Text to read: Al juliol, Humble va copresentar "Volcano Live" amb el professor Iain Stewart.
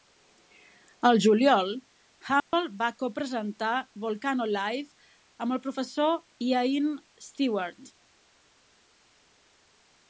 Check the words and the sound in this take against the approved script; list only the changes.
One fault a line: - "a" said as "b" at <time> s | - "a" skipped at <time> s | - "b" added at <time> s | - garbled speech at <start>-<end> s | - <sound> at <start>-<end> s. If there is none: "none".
- dropout at 2.4-2.5 s